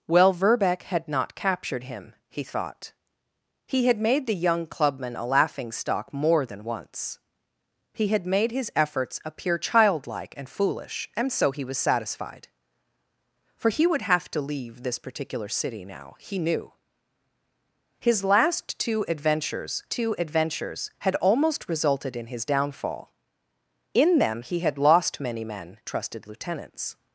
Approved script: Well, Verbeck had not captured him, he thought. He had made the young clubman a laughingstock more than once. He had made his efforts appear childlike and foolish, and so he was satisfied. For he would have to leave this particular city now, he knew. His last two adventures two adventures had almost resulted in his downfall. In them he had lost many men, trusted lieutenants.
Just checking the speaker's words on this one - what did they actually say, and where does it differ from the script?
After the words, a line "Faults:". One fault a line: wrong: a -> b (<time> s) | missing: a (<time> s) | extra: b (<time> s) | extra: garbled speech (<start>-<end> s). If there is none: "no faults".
Well, Verbeck had not captured him, he thought. He had made the young clubman a laughingstock more than once. He had made his efforts appear childlike and foolish, and so he was satisfied. For he would have to leave this particular city now, he knew. His last two adventures two adventures had almost resulted in his downfall. In them he had lost many men, trusted lieutenants.
Faults:
no faults